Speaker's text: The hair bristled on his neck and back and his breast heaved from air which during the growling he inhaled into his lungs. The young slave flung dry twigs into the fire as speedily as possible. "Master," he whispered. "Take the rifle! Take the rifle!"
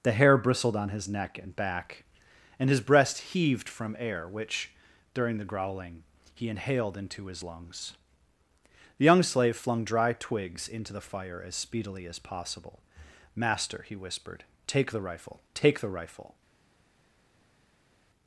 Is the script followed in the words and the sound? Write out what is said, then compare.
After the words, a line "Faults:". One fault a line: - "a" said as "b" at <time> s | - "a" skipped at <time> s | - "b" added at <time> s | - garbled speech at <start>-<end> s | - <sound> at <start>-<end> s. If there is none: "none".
The hair bristled on his neck and back and his breast heaved from air which during the growling he inhaled into his lungs. The young slave flung dry twigs into the fire as speedily as possible. "Master," he whispered. "Take the rifle! Take the rifle!"
Faults:
none